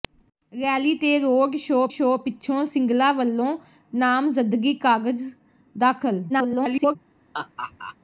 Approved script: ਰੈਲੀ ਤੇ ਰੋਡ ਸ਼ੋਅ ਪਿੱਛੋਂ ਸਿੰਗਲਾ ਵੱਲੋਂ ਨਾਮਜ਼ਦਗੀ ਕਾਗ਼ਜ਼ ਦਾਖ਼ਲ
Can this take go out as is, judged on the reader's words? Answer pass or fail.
fail